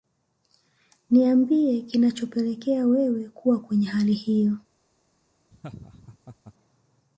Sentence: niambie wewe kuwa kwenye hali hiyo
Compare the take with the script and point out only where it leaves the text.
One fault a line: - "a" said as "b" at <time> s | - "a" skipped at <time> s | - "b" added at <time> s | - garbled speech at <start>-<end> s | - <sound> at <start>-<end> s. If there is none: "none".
- "kinachopelekea" added at 1.8 s
- laugh at 5.5-6.5 s